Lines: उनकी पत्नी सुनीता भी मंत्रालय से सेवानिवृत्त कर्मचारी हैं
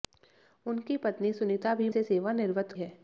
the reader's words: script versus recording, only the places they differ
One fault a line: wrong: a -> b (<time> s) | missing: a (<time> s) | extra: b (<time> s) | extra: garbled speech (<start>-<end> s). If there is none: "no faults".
missing: मंत्रालय (1.9 s)
missing: कर्मचारी (2.7 s)